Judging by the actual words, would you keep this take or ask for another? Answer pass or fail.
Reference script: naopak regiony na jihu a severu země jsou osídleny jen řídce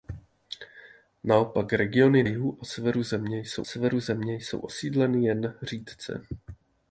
fail